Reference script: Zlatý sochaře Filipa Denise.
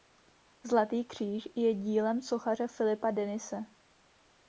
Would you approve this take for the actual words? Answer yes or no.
no